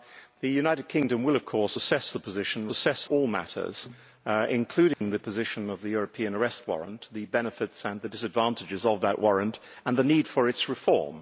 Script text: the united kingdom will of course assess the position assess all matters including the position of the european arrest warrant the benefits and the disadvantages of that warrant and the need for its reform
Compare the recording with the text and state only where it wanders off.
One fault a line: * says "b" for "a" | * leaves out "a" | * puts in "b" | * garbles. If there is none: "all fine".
all fine